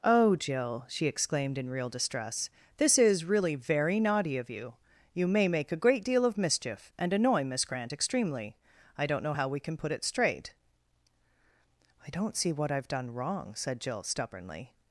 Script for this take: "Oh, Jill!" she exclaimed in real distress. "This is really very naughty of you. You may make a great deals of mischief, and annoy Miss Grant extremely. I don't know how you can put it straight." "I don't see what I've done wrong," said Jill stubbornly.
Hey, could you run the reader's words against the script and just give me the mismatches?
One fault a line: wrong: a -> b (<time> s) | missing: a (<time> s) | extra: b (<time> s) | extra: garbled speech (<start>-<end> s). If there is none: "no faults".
wrong: deals -> deal (6.0 s)
wrong: you -> we (9.5 s)